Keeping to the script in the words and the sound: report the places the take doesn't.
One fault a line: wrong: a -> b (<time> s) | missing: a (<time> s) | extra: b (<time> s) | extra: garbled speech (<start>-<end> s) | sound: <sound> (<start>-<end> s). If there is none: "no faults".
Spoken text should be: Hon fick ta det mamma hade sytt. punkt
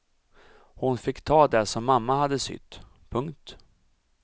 extra: som (1.6 s)